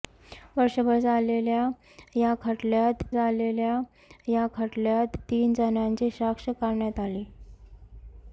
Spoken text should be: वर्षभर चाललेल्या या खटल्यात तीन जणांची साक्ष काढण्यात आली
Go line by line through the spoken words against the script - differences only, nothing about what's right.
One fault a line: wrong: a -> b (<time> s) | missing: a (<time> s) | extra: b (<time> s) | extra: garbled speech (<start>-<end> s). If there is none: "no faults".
extra: चाललेल्या या खटल्यात (3.1 s)